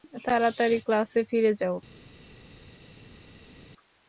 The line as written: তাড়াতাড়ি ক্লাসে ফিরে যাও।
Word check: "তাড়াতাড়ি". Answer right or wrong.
right